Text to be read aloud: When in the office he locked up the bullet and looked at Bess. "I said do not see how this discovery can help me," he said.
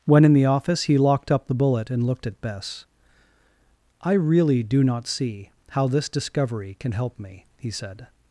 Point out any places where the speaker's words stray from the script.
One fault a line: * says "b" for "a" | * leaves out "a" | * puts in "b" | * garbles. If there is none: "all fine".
* says "really" for "said"